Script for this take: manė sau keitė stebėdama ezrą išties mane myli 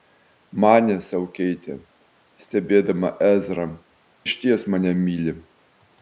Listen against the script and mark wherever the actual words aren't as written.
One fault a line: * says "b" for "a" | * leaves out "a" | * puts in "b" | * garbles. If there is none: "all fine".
all fine